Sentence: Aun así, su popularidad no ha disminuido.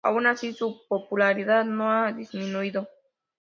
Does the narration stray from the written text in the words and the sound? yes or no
no